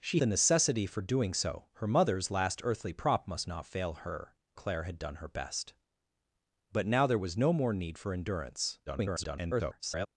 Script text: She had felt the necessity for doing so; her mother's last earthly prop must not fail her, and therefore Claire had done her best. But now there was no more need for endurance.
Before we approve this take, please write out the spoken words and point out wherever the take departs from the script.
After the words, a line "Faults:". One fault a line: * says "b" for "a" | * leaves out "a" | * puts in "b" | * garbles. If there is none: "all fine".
She the necessity for doing so; her mother's last earthly prop must not fail her, Claire had done her best. But now there was no more need for endurance. [garbled]
Faults:
* leaves out "had felt"
* leaves out "and therefore"
* garbles